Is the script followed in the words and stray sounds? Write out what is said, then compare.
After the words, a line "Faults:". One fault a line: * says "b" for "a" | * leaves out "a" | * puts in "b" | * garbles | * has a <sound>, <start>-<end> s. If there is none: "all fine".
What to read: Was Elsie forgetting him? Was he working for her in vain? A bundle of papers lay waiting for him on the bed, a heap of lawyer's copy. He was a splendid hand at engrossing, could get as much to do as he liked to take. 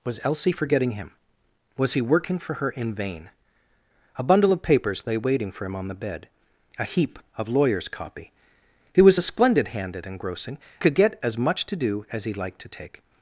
Was Elsie forgetting him? Was he working for her in vain? A bundle of papers lay waiting for him on the bed, a heap of lawyer's copy. He was a splendid hand at engrossing, could get as much to do as he liked to take.
Faults:
all fine